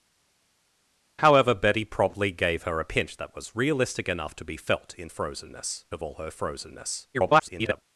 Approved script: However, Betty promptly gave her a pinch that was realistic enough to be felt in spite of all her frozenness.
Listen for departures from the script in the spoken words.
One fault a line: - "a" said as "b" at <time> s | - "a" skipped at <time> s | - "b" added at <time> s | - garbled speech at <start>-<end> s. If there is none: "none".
- "spite" said as "frozenness" at 5.1 s
- garbled speech at 7.1-7.8 s